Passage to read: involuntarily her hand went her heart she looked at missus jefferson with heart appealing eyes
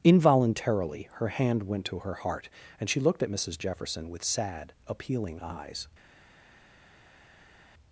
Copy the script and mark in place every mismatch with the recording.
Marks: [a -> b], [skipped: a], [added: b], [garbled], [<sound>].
involuntarily her hand went [added: to] her heart [added: and] she looked at missus jefferson with [heart -> sad] appealing eyes